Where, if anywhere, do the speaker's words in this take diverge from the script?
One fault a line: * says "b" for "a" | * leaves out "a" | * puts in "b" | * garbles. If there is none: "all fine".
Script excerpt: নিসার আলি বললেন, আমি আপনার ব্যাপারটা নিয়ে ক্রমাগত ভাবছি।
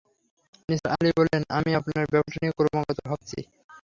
all fine